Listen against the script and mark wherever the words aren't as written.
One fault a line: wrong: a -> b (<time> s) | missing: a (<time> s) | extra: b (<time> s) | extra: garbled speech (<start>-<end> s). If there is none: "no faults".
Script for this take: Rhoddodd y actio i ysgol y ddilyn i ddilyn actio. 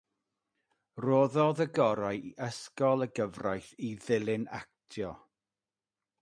wrong: actio -> gorau (1.8 s)
wrong: ddilyn -> gyfraith (3.2 s)